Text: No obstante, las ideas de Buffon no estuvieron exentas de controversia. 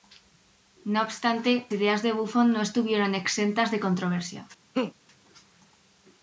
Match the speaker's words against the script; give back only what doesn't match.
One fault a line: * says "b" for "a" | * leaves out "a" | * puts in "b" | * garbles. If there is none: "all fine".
* leaves out "las"